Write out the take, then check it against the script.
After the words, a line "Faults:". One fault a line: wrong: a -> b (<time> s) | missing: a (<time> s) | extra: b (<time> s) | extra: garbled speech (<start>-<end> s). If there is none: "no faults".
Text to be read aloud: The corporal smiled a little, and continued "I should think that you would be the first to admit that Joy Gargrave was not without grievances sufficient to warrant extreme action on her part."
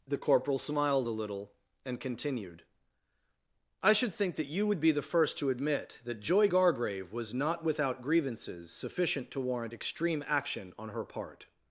The corporal smiled a little, and continued "I should think that you would be the first to admit that Joy Gargrave was not without grievances sufficient to warrant extreme action on her part."
Faults:
no faults